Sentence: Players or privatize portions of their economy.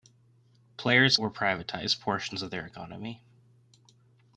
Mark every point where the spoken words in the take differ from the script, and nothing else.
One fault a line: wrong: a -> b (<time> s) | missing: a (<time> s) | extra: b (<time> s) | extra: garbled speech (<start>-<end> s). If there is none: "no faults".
no faults